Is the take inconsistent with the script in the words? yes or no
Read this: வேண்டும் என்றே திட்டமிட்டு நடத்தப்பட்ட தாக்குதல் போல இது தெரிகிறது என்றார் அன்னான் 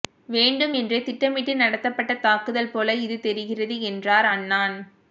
no